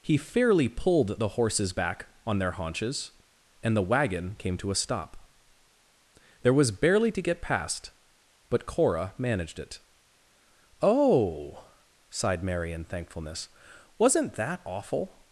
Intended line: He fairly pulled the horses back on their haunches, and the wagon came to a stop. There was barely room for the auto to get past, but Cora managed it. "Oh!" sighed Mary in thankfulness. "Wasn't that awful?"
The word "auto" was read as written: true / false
false